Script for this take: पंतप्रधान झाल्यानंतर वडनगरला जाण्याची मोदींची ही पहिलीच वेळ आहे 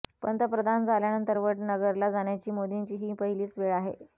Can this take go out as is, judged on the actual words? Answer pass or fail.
pass